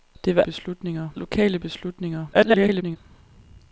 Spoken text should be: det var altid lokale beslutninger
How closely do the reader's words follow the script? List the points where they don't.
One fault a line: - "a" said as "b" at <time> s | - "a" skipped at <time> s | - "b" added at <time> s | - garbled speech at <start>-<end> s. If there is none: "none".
- "altid" said as "beslutninger" at 0.4 s
- garbled speech at 2.3-3.0 s